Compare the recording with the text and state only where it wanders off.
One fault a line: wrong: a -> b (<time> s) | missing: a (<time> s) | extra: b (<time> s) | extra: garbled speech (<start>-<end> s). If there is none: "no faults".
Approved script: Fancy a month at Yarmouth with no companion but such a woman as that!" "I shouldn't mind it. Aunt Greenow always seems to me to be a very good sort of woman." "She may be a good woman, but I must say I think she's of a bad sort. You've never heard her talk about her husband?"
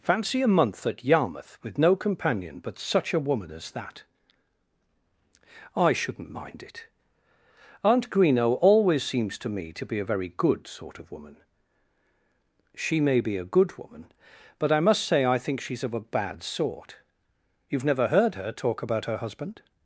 no faults